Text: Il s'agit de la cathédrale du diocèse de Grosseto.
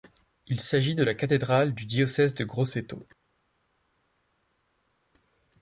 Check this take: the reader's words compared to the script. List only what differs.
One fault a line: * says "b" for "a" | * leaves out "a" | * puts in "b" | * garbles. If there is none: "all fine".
all fine